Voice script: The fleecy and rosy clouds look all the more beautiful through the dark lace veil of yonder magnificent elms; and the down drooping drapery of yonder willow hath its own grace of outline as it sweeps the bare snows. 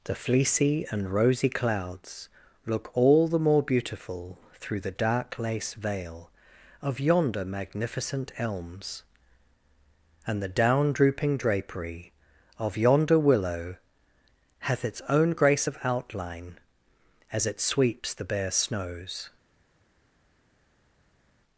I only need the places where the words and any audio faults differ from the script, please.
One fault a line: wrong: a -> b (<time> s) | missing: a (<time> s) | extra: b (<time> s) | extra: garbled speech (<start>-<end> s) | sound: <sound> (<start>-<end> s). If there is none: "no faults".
no faults